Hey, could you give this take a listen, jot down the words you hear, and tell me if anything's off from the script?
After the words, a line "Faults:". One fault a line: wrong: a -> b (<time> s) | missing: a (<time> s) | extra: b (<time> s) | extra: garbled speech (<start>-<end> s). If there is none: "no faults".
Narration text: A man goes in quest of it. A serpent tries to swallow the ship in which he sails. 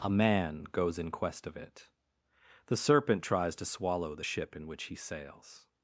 A man goes in quest of it. The serpent tries to swallow the ship in which he sails.
Faults:
wrong: A -> The (2.7 s)